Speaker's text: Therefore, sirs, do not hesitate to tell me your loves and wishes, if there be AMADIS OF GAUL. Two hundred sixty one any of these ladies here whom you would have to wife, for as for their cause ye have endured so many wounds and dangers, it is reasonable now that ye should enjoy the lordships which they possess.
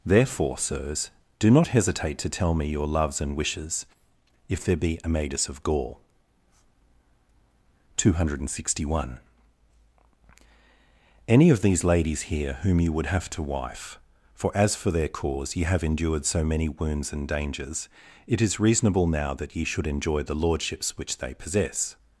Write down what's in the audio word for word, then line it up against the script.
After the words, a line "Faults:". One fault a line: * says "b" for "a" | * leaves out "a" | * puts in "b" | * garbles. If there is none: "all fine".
Therefore, sirs, do not hesitate to tell me your loves and wishes, if there be AMADIS OF GAUL. Two hundred sixty one any of these ladies here whom you would have to wife, for as for their cause ye have endured so many wounds and dangers, it is reasonable now that ye should enjoy the lordships which they possess.
Faults:
all fine